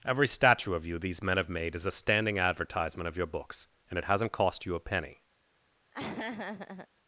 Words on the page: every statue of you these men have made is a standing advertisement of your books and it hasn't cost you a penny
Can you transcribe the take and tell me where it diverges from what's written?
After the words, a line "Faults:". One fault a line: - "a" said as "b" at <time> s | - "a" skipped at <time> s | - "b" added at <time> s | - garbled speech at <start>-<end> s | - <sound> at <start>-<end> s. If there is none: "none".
every statue of you these men have made is a standing advertisement of your books and it hasn't cost you a penny
Faults:
- laugh at 5.9-6.9 s